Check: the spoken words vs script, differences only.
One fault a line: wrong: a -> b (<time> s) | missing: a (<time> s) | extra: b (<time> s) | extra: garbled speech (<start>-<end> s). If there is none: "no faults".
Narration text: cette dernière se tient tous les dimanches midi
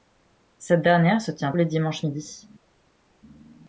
missing: tous (1.5 s)